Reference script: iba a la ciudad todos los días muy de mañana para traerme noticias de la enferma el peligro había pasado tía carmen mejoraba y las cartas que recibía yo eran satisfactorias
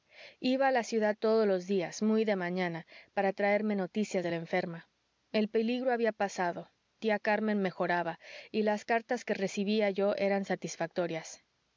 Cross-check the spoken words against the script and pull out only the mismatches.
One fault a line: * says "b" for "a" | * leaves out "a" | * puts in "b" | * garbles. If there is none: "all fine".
all fine